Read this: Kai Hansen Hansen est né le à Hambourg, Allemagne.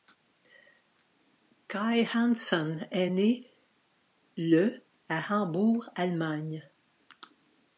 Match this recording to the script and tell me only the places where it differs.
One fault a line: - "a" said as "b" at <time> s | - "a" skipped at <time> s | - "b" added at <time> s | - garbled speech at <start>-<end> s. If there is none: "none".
- "Hansen" skipped at 2.9 s